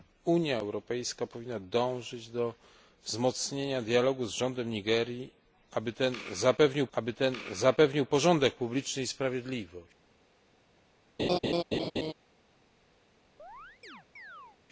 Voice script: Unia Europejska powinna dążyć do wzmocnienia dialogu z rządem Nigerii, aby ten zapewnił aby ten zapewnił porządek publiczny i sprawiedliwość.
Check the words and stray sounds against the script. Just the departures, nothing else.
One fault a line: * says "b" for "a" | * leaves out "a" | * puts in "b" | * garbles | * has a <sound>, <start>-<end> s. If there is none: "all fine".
* has a laugh, 11.2-12.1 s
* has a chirp, 13.4-14.6 s